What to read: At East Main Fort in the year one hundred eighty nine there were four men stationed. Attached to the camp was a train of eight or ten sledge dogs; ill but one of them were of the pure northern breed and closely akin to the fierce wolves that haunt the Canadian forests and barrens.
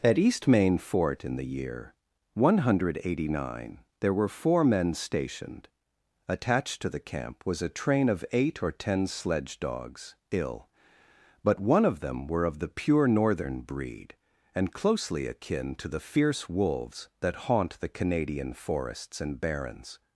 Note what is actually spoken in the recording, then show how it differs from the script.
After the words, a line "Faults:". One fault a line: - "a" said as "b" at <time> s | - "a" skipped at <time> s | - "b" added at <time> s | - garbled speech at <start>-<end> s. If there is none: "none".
At East Main Fort in the year one hundred eighty nine there were four men stationed. Attached to the camp was a train of eight or ten sledge dogs; ill but one of them were of the pure northern breed and closely akin to the fierce wolves that haunt the Canadian forests and barrens.
Faults:
none